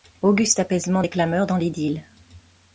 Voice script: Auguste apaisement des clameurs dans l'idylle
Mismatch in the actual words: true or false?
false